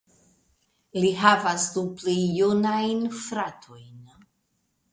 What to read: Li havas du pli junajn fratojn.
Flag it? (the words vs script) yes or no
no